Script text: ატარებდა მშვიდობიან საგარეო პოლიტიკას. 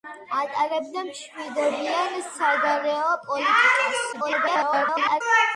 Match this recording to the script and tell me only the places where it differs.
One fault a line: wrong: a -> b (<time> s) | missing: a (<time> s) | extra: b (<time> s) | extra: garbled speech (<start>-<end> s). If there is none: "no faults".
extra: garbled speech (4.1-5.2 s)